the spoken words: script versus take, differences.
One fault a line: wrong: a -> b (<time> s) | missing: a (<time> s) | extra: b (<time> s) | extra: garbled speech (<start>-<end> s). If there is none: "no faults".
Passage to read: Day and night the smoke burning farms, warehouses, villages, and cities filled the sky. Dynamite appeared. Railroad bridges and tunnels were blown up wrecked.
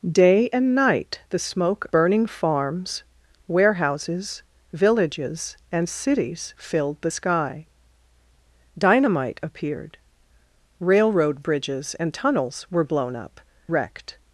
no faults